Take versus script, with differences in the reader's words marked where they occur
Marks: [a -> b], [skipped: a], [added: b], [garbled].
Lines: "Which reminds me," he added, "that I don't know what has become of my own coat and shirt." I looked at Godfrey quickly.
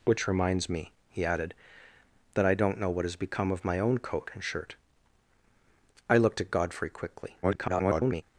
"Which reminds me," he added, "that I don't know what has become of my own coat and shirt." I looked at Godfrey quickly. [garbled]